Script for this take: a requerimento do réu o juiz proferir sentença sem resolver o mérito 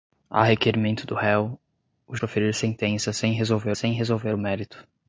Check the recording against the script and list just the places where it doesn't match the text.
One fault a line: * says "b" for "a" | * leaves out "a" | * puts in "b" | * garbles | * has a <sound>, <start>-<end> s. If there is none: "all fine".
* leaves out "juiz"
* puts in "sem resolver"